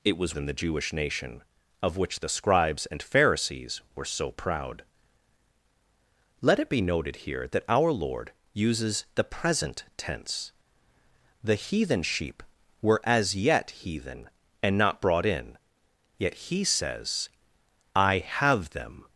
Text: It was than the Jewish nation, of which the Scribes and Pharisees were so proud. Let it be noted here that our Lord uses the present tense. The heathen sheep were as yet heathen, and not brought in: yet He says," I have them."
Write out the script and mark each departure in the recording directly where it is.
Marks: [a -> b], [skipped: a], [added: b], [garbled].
It was than the Jewish nation, of which the Scribes and Pharisees were so proud. Let it be noted here that our Lord uses the present tense. The heathen sheep were as yet heathen, and not brought in: yet He says," I have them."